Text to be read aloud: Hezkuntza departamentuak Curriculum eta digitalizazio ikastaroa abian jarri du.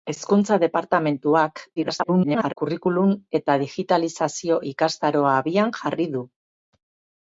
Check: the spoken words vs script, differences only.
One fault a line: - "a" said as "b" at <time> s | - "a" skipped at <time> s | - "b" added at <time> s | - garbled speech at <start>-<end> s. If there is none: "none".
- garbled speech at 1.8-2.5 s